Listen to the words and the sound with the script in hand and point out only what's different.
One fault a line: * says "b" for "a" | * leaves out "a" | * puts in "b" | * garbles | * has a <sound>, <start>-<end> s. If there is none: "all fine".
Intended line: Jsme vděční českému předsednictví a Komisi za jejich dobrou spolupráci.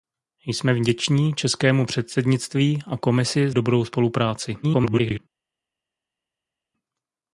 * leaves out "za jejich"
* garbles